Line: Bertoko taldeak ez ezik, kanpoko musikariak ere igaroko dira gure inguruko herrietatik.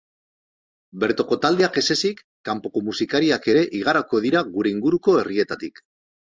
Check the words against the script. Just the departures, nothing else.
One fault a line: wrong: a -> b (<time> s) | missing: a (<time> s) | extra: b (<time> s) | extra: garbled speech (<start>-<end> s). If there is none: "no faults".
no faults